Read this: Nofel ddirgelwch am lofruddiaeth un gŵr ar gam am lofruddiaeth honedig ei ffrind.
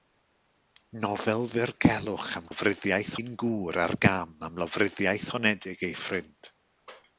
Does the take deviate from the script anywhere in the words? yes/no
no